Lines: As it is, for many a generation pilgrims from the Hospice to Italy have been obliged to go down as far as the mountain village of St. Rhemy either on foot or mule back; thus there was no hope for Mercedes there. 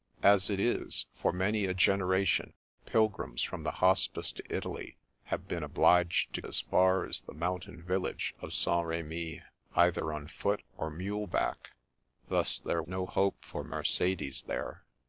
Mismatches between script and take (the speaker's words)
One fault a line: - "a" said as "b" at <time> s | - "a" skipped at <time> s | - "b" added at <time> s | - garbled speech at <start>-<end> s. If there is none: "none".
- "go down" skipped at 6.4 s
- "was" skipped at 12.8 s